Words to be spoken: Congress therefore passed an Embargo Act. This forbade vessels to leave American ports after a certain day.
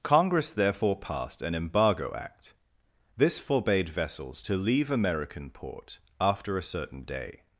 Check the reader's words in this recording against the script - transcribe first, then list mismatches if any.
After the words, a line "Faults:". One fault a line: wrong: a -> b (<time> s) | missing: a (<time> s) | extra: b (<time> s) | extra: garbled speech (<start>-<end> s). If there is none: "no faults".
Congress therefore passed an Embargo Act. This forbade vessels to leave American port after a certain day.
Faults:
wrong: ports -> port (5.5 s)